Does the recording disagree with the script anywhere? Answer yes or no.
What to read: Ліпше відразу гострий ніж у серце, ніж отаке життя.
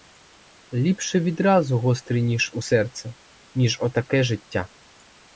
no